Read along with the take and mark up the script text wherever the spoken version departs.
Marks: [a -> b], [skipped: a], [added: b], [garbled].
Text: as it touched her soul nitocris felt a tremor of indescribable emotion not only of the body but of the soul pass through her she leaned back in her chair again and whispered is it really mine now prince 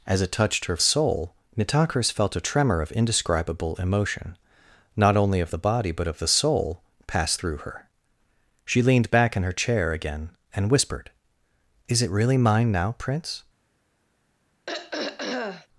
as it touched her soul nitocris felt a tremor of indescribable emotion not only of the body but of the soul pass through her she leaned back in her chair again and whispered is it really mine now prince